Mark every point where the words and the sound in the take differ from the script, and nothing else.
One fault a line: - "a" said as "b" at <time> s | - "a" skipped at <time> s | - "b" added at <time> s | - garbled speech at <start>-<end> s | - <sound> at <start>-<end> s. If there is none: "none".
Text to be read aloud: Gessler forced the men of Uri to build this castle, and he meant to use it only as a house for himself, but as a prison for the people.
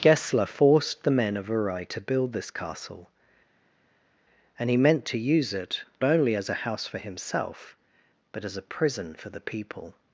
none